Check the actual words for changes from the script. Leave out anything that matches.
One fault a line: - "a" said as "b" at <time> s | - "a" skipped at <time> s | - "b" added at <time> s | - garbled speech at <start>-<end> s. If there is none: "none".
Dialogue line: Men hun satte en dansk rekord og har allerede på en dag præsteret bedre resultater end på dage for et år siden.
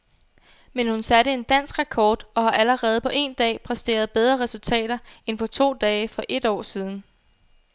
- "to" added at 5.5 s